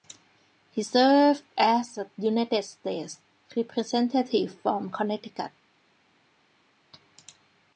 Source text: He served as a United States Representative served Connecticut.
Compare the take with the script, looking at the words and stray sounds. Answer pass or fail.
fail